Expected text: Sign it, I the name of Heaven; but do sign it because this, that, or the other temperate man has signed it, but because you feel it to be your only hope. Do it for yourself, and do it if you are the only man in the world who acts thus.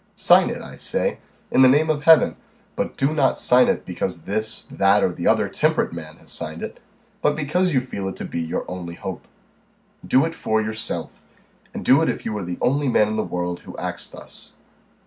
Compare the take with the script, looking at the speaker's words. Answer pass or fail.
fail